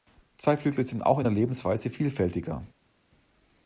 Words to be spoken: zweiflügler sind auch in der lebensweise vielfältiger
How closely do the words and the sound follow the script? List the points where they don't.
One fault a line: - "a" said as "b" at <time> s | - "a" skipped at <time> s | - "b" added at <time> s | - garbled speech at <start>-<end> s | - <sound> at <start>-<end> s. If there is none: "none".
none